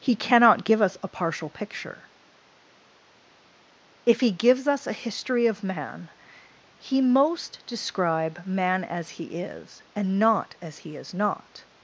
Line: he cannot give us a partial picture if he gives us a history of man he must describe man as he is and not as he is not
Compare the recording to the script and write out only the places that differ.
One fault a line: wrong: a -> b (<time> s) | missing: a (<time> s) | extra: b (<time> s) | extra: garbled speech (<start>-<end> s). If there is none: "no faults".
wrong: must -> most (7.0 s)